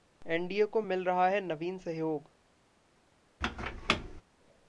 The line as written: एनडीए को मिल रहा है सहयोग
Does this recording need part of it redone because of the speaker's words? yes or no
yes